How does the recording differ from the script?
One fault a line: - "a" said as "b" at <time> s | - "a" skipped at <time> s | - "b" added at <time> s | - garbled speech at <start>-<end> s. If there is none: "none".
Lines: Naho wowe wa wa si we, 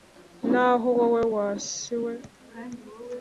- "wa" skipped at 1.5 s